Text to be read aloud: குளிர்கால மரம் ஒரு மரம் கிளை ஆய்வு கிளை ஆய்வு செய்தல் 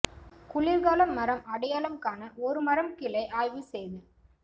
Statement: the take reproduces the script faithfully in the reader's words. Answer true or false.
false